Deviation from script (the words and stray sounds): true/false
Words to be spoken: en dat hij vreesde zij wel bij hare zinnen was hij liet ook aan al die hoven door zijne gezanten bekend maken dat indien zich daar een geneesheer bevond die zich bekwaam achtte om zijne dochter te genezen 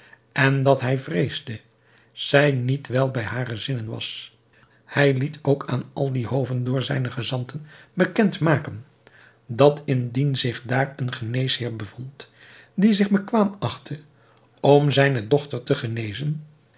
true